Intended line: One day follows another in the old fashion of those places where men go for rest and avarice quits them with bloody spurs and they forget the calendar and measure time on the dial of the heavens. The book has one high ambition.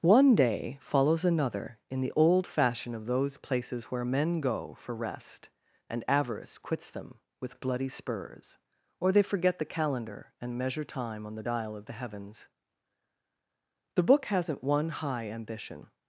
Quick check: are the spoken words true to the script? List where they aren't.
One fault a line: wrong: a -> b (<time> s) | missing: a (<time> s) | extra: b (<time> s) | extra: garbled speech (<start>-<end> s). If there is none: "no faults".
wrong: and -> or (9.0 s)
wrong: has -> hasn't (14.3 s)